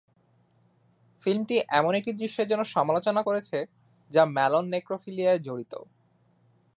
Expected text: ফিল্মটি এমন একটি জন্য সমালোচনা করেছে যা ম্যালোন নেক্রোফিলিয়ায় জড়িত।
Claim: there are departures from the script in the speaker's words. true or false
true